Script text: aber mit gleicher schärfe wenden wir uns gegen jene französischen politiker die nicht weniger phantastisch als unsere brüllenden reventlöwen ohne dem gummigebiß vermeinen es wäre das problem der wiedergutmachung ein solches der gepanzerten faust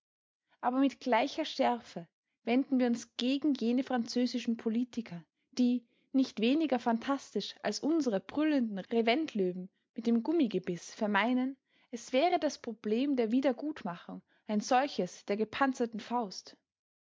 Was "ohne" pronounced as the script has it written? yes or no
no